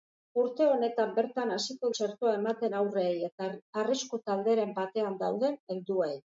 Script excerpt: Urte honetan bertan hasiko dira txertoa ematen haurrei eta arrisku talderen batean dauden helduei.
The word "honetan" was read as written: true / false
true